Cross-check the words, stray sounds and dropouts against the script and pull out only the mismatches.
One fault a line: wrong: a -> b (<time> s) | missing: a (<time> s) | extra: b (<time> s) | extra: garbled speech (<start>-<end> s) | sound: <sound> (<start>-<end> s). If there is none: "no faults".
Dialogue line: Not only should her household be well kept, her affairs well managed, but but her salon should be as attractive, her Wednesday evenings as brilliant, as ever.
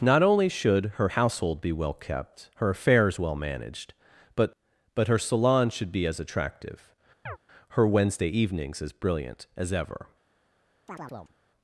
sound: chirp (7.3-7.4 s)
sound: chirp (10.9-11.4 s)